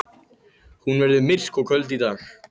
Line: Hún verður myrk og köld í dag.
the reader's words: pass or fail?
pass